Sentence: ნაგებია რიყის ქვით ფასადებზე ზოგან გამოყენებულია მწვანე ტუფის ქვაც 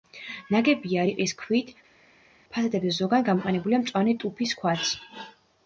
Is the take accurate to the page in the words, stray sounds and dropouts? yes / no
yes